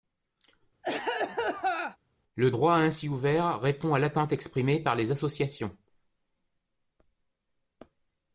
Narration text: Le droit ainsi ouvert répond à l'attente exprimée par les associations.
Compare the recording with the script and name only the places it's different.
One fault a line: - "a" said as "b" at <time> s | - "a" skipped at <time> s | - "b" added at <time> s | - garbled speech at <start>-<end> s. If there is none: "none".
none